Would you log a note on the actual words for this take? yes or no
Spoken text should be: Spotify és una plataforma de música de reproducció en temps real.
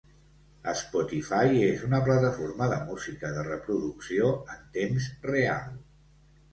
no